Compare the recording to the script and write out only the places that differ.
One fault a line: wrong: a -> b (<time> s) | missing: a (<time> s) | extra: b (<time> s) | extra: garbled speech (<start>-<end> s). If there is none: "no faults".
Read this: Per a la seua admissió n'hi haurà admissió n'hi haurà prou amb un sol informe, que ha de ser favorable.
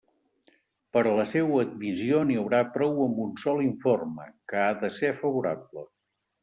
missing: admissió n'hi haurà (2.6 s)